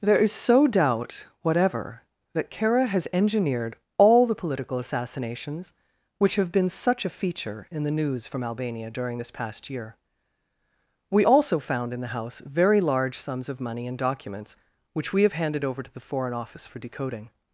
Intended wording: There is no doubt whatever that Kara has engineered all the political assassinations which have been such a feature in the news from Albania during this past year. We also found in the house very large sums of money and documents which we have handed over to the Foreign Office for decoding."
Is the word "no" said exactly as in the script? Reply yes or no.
no